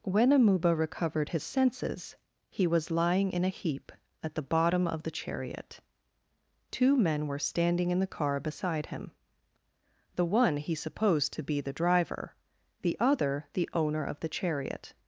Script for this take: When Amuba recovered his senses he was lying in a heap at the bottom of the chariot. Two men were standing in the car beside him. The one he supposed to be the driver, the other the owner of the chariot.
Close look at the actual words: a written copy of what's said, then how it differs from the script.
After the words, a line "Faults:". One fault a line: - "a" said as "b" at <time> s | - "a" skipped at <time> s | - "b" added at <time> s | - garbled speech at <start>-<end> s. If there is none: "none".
When Amuba recovered his senses he was lying in a heap at the bottom of the chariot. Two men were standing in the car beside him. The one he supposed to be the driver, the other the owner of the chariot.
Faults:
none